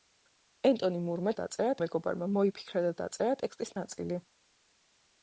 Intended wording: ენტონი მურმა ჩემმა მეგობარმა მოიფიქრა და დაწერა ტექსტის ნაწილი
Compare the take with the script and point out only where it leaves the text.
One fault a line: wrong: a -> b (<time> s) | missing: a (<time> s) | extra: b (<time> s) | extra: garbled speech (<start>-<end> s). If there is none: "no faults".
wrong: ჩემმა -> დაწერა (1.4 s)